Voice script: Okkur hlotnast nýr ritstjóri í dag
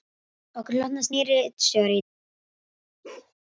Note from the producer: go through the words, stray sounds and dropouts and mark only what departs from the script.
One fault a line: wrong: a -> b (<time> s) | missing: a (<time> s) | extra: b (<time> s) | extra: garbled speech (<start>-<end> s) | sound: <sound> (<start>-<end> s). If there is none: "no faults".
sound: bark (3.0-3.3 s)